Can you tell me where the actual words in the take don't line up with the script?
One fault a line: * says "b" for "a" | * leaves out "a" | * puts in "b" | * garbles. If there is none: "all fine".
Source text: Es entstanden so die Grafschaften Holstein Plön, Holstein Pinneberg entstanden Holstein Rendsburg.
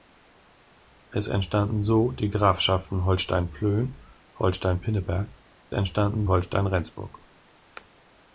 all fine